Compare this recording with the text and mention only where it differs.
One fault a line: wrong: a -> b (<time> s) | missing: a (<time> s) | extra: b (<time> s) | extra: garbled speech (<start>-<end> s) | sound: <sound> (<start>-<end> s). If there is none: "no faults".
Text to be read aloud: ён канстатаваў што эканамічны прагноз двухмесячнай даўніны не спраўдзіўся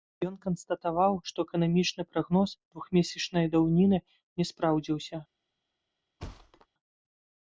sound: thud (6.2-6.7 s)